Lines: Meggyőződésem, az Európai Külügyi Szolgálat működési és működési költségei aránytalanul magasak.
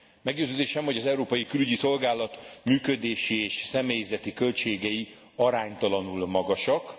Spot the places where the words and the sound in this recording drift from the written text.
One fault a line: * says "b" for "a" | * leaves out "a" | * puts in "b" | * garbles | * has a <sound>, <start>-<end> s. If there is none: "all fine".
* puts in "hogy"
* says "személyzeti" for "működési"